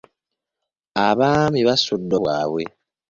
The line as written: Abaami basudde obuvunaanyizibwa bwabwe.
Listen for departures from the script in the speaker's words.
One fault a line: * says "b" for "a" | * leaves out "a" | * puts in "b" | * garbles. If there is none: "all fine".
* leaves out "obuvunaanyizibwa"